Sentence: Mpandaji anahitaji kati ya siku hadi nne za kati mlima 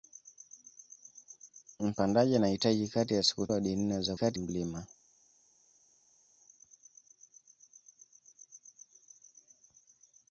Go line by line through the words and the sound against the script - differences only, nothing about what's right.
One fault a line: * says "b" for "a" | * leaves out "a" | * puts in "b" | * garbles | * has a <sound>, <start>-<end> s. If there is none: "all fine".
all fine